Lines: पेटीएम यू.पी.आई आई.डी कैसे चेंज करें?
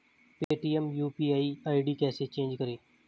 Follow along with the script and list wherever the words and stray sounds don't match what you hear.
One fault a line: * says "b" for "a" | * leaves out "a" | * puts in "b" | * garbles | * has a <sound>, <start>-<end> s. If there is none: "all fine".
* has a dropout, 0.4-0.5 s